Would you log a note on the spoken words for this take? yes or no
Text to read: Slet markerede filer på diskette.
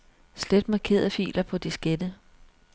no